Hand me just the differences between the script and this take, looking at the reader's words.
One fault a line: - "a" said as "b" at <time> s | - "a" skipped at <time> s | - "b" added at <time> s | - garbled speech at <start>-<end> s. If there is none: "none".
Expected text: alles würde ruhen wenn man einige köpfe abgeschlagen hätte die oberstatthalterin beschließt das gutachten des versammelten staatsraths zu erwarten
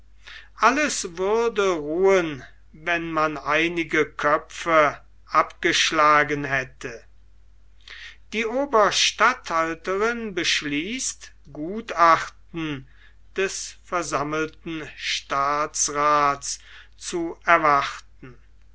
- "das" skipped at 11.3 s